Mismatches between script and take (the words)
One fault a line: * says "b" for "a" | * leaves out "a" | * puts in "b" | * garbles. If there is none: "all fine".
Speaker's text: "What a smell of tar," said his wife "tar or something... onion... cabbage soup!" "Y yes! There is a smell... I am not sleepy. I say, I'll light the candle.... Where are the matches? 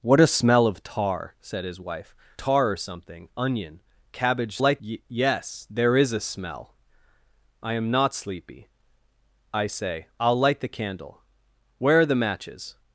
* says "light" for "soup"